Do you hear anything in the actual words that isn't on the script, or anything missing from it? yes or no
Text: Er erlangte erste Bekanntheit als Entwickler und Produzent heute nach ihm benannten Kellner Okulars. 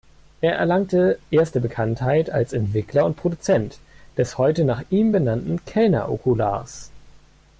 yes